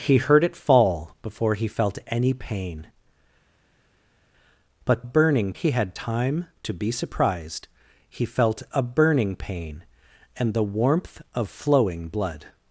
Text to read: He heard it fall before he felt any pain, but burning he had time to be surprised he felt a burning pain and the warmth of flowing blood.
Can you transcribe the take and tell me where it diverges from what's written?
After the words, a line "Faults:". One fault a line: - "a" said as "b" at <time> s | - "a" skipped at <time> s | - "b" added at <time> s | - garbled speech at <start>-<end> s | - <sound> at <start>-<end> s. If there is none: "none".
He heard it fall before he felt any pain, but burning he had time to be surprised he felt a burning pain and the warmth of flowing blood.
Faults:
none